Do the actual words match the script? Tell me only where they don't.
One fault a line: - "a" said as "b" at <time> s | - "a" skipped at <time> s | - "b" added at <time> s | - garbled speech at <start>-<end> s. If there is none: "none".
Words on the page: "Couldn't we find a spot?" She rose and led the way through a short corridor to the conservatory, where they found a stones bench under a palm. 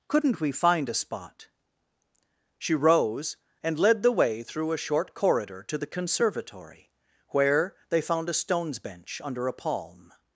none